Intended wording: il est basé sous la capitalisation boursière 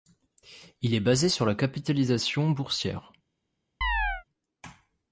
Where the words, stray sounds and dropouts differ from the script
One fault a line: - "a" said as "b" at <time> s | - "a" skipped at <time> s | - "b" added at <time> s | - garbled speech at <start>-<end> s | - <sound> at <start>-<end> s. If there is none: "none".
- "sous" said as "sur" at 1.3 s
- chirp at 3.8-4.2 s